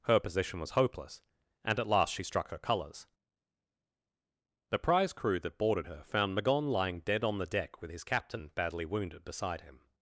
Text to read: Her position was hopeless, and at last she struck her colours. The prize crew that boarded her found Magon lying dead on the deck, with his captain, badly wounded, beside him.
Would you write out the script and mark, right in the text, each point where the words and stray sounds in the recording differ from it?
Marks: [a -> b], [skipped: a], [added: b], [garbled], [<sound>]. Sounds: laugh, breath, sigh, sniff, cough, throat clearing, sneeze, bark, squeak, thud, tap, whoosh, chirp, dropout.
Her position was hopeless, and at last she struck her colours. The prize crew that boarded her found Magon lying dead on the deck, with his captain, badly wounded, beside him.